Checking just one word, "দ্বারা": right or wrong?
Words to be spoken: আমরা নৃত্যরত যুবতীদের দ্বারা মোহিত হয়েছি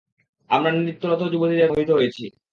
wrong